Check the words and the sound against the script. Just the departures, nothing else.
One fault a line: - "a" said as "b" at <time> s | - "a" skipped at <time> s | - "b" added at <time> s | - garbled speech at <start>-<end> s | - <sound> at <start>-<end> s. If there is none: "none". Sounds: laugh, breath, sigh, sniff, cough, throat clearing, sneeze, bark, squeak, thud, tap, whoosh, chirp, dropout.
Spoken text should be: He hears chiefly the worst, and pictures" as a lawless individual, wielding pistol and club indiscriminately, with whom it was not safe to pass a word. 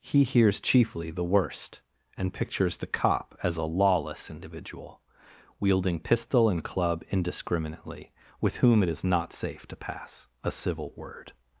- "the cop" added at 2.8 s
- "was" said as "is" at 8.9 s
- "civil" added at 10.5 s